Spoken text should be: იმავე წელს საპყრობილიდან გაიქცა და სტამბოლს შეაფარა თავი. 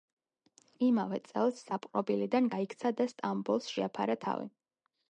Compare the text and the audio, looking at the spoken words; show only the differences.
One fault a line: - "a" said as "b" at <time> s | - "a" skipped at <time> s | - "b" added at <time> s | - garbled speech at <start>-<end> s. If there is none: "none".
none